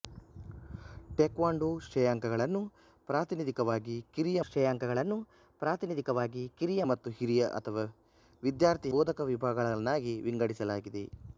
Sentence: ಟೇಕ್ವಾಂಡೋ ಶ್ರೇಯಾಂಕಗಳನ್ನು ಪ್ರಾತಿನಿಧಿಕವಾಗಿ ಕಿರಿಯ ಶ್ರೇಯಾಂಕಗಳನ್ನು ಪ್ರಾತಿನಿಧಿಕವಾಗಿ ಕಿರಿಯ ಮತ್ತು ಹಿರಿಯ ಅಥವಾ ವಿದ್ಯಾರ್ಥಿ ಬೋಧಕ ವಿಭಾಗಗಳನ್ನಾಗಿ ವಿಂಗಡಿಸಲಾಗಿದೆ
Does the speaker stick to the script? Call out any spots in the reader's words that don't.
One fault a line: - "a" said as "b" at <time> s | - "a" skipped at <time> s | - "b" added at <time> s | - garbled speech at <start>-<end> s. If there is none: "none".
none